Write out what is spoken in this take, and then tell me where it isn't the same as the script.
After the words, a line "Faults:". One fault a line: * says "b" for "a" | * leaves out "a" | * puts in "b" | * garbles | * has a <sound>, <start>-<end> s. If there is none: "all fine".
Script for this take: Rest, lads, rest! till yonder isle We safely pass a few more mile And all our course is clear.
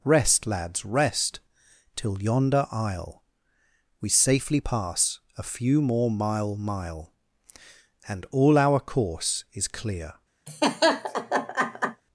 Rest, lads, rest! till yonder isle We safely pass a few more mile mile And all our course is clear.
Faults:
* puts in "mile"
* has a laugh, 10.5-12.0 s